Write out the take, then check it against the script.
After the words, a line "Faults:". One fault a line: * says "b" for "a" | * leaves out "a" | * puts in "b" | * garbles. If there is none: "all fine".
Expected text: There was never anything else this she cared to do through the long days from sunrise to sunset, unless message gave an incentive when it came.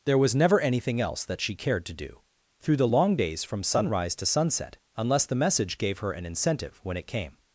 There was never anything else that she cared to do through the long days from sunrise to sunset, unless the message gave her an incentive when it came.
Faults:
* says "that" for "this"
* puts in "the"
* puts in "her"